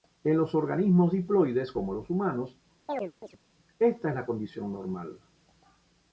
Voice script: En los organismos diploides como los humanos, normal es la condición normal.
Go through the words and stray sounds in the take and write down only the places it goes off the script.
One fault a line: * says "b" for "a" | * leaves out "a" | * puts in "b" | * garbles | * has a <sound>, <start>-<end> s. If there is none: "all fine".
* has a chirp, 2.9-3.4 s
* says "esta" for "normal"